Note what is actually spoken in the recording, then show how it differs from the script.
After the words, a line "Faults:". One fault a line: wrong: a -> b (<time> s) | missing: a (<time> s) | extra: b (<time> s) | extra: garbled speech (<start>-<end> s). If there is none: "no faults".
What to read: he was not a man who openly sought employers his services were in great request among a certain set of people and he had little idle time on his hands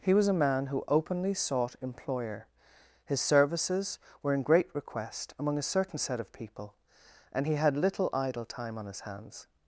he was a man who openly sought employer his services were in great request among a certain set of people and he had little idle time on his hands
Faults:
missing: not (0.3 s)
wrong: employers -> employer (1.8 s)